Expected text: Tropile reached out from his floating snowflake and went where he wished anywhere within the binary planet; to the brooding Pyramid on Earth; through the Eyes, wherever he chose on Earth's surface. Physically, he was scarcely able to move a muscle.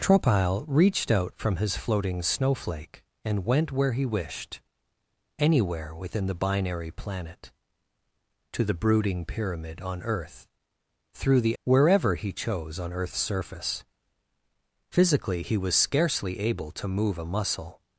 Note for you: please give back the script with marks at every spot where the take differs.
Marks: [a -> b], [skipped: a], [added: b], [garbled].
Tropile reached out from his floating snowflake and went where he wished anywhere within the binary planet; to the brooding Pyramid on Earth; through the [skipped: Eyes,] wherever he chose on Earth's surface. Physically, he was scarcely able to move a muscle.